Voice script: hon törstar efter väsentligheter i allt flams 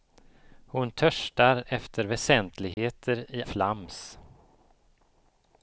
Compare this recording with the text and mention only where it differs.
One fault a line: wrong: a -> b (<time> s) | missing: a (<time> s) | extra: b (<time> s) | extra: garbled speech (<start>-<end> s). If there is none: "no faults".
missing: allt (3.4 s)